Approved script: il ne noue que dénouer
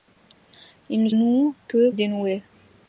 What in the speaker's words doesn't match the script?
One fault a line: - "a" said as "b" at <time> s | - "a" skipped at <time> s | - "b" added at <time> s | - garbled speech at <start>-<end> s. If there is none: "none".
none